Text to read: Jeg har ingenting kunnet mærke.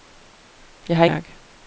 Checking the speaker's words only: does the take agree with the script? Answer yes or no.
no